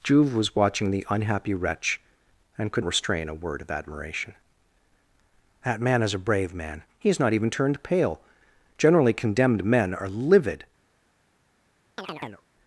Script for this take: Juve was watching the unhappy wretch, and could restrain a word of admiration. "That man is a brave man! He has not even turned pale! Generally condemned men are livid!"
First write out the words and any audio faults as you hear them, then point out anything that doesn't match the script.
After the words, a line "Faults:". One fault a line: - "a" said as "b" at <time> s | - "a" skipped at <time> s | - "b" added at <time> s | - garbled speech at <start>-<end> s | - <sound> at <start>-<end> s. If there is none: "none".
Juve was watching the unhappy wretch, and could restrain a word of admiration. "That man is a brave man! He has not even turned pale! Generally condemned men are livid!"
Faults:
- chirp at 12.0-12.5 s